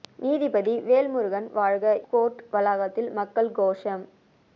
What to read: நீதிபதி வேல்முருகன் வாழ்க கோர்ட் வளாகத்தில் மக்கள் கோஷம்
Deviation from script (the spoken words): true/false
false